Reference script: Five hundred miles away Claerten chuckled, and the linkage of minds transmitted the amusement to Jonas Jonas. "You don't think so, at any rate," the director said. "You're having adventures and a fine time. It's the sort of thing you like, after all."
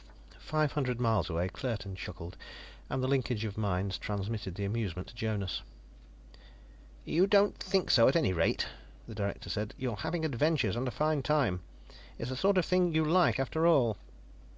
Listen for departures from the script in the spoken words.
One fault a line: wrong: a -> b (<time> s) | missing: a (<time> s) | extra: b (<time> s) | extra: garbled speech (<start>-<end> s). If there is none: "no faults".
missing: Jonas (5.6 s)